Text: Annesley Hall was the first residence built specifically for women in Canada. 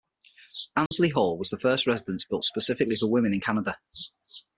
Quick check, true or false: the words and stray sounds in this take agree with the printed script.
false